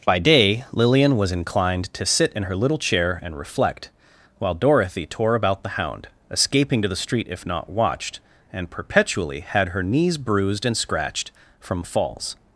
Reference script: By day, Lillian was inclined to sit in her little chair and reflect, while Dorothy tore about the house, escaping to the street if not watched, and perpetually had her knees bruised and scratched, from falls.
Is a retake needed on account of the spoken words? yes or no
yes